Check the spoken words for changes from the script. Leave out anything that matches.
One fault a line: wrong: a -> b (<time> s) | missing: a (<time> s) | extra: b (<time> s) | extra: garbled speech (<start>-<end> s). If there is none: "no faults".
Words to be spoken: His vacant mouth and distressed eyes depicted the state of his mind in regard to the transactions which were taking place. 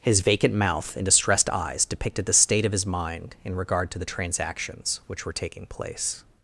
no faults